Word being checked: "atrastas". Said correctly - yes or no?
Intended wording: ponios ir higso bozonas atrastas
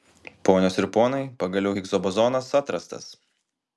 yes